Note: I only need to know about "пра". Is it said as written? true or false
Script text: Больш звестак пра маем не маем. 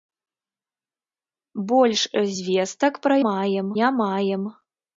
true